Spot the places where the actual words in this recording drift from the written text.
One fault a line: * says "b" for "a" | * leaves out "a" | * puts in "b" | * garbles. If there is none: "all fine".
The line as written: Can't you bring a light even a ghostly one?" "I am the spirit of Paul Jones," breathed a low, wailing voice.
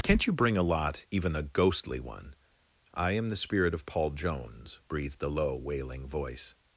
* says "lot" for "light"